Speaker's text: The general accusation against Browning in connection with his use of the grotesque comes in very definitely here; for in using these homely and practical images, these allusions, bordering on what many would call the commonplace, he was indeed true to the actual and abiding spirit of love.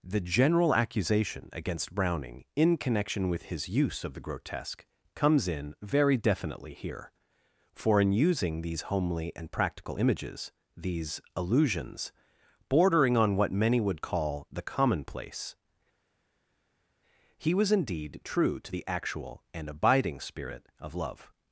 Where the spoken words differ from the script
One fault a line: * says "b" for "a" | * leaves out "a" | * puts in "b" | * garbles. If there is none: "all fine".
all fine